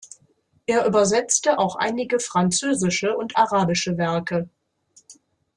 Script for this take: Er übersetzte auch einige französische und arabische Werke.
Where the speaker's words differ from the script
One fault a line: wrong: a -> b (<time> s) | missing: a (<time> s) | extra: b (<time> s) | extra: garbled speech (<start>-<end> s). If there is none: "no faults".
no faults